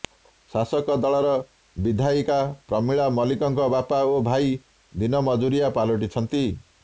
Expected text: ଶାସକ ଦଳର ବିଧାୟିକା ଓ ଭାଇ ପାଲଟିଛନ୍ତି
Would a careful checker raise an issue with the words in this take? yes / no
yes